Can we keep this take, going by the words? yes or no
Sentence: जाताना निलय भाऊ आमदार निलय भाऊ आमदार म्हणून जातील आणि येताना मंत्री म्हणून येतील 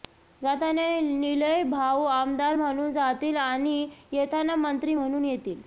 no